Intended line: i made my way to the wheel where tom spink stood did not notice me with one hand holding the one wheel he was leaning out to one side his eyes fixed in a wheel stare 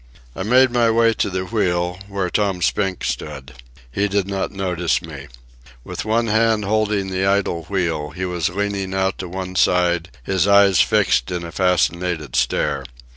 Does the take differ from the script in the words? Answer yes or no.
yes